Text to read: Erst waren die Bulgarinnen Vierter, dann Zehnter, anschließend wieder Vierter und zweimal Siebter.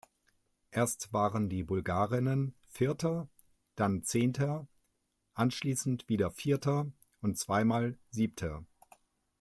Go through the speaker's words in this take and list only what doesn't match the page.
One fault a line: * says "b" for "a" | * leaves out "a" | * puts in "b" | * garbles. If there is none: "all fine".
all fine